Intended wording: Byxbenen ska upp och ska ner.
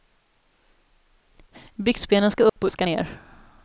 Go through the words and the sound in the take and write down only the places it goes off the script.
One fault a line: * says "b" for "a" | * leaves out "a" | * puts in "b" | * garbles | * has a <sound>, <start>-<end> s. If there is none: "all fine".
* has a dropout, 2.5-2.6 s